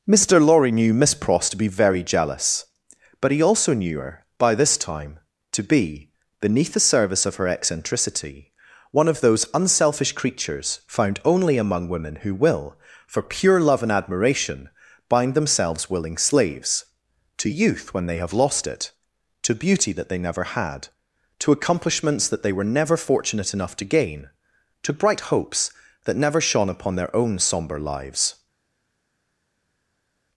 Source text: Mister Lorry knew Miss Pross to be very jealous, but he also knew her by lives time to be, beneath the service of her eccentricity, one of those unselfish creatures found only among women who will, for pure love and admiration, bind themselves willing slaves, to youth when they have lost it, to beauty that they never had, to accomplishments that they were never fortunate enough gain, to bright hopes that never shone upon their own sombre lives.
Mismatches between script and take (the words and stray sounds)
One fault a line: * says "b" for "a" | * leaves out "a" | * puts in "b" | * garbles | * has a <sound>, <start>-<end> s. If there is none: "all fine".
* says "this" for "lives"
* puts in "to"